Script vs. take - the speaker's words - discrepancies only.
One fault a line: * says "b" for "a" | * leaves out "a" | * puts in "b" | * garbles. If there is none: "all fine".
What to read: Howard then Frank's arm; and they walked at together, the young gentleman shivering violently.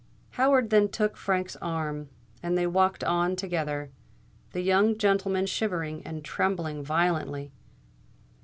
* puts in "took"
* says "on" for "at"
* puts in "and trembling"